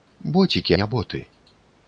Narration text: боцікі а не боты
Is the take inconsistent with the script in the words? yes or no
yes